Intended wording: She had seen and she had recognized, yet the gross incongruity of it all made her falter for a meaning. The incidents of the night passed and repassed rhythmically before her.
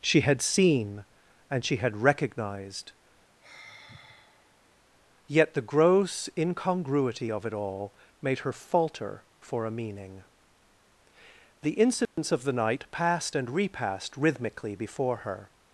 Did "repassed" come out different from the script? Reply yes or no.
no